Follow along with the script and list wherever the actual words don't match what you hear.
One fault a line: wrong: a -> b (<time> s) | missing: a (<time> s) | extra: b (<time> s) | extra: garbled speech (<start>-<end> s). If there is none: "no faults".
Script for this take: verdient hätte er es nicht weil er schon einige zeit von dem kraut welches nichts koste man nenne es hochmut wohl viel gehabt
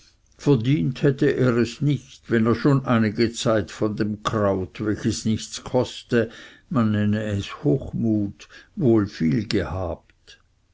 wrong: weil -> wenn (2.3 s)